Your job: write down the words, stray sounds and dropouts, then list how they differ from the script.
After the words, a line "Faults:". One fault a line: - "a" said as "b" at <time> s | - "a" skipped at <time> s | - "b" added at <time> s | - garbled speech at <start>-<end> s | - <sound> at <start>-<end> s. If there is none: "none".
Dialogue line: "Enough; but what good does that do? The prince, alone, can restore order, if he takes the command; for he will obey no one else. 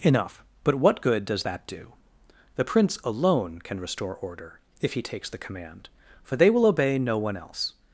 "Enough; but what good does that do? The prince, alone, can restore order, if he takes the command; for they will obey no one else.
Faults:
- "he" said as "they" at 6.3 s